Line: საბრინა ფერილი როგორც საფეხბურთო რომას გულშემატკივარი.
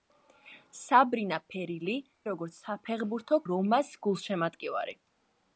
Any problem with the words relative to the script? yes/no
no